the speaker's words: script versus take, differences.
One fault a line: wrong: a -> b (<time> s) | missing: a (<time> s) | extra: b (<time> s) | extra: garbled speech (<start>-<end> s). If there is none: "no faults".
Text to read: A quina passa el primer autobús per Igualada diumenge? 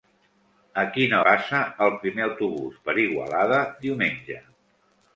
no faults